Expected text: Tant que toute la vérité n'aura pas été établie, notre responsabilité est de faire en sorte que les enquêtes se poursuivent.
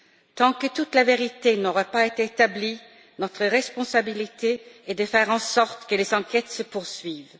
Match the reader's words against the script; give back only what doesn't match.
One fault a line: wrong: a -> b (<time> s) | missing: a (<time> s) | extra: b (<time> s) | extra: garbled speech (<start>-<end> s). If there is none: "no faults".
no faults